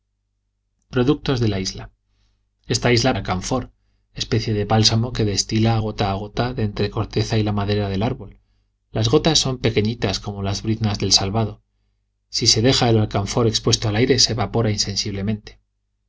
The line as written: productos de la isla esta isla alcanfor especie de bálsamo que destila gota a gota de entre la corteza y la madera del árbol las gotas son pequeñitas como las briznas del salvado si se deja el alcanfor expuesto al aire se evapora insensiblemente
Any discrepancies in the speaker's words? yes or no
no